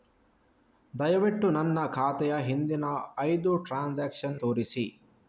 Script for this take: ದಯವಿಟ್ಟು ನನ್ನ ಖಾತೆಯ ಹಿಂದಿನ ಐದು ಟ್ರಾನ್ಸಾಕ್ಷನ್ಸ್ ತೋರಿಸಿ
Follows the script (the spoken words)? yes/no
yes